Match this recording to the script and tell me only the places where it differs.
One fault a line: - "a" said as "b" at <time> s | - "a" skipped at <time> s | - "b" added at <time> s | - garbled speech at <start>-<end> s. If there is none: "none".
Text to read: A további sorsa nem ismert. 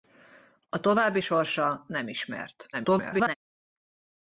- garbled speech at 2.7-3.4 s